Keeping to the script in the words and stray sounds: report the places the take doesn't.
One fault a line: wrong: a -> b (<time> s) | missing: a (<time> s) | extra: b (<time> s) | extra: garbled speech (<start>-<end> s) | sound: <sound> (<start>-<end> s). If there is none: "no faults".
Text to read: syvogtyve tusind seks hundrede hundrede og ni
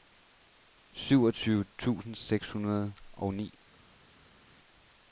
missing: hundrede (2.9 s)